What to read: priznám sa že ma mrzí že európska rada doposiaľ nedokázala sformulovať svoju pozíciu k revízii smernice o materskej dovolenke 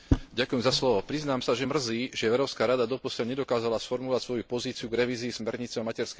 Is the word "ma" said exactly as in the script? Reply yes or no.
no